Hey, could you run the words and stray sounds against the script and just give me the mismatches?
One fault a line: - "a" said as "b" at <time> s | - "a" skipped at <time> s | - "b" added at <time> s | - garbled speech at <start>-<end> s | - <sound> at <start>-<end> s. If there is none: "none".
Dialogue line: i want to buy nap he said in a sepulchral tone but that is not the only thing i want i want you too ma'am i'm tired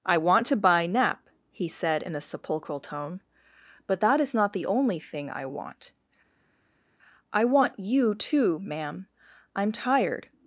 none